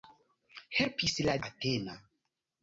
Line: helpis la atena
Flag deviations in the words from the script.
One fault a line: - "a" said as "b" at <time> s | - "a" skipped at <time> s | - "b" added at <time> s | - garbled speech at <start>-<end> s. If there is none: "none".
none